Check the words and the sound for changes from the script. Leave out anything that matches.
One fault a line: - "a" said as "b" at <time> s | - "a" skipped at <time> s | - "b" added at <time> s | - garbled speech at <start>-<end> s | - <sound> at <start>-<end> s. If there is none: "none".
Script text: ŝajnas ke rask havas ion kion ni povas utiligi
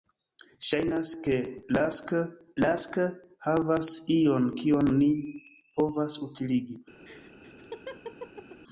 - "rask" added at 2.6 s
- laugh at 7.0-8.6 s